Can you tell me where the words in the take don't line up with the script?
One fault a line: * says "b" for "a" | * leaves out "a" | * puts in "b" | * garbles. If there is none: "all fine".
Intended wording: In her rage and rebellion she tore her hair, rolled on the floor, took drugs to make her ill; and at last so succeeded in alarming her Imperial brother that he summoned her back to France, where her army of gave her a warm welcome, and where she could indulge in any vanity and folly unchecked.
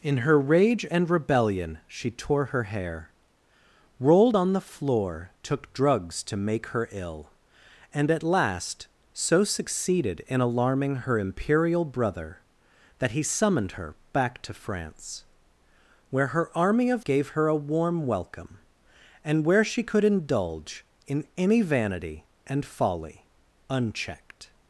all fine